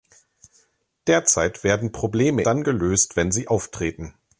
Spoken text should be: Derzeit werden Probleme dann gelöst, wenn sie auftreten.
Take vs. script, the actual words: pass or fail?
pass